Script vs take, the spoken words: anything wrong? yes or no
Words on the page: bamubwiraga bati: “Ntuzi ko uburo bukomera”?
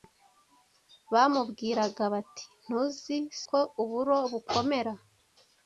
no